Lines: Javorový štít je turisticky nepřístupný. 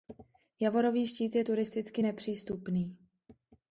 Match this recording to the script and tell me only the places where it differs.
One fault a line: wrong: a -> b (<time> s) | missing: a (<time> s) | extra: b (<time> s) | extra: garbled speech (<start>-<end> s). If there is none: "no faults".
no faults